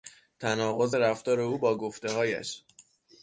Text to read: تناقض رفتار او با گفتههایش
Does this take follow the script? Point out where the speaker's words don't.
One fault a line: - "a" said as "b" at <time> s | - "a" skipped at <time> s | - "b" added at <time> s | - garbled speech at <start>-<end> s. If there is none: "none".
none